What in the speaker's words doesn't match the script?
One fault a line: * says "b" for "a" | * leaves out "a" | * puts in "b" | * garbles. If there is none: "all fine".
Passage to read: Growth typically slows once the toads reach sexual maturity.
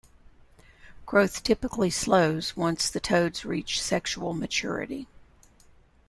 all fine